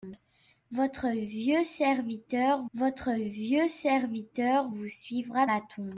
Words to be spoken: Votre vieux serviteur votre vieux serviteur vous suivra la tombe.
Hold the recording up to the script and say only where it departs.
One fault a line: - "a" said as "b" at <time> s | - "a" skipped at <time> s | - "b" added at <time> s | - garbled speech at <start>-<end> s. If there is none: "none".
none